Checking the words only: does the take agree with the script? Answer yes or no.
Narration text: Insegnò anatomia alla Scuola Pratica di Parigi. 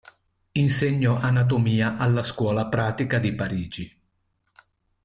yes